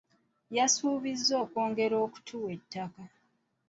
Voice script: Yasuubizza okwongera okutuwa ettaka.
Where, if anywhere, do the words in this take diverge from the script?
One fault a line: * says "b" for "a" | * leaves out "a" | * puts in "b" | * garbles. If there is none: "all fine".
all fine